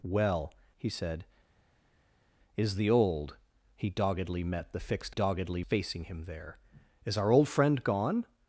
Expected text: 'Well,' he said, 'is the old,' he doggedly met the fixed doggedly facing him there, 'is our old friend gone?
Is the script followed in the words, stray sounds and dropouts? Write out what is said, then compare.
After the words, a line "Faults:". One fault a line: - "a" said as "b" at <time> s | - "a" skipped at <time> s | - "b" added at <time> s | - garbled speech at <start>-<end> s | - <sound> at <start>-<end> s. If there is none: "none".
'Well,' he said, 'is the old,' he doggedly met the fixed doggedly facing him there, 'is our old friend gone?
Faults:
none